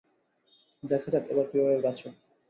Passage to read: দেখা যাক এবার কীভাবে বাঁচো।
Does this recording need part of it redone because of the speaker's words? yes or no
no